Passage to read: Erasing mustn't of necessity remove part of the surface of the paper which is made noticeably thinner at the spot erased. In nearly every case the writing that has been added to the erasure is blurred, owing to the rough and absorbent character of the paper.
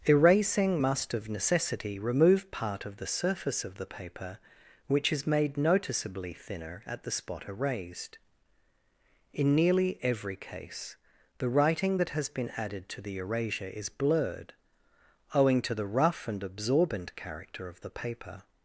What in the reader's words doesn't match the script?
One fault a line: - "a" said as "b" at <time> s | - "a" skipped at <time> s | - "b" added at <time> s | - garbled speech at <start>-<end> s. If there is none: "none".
- "mustn't" said as "must" at 0.8 s